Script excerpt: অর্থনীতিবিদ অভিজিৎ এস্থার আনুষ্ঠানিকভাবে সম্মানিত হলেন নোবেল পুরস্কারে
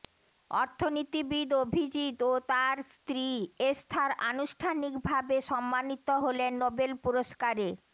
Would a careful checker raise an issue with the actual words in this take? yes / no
yes